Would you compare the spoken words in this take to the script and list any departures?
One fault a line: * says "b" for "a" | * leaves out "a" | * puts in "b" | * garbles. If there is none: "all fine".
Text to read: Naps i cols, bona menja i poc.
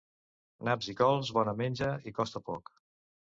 * puts in "costa"